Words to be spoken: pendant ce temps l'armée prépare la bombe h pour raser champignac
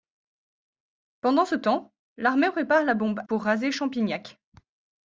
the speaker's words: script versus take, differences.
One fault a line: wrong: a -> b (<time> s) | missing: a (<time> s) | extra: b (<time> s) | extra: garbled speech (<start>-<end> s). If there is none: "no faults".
missing: h (3.2 s)